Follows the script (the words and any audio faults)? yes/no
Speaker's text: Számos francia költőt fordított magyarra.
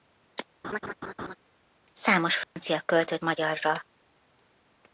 no